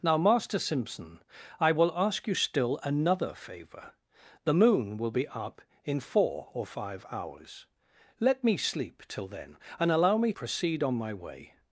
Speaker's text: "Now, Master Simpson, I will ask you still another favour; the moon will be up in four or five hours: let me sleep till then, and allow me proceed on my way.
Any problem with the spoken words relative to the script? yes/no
no